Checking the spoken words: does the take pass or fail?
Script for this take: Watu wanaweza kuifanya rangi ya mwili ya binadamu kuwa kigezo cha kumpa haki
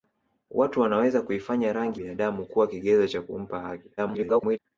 fail